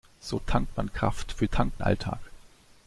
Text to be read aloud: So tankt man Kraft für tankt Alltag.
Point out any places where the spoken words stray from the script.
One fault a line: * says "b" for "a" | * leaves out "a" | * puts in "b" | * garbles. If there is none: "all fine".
all fine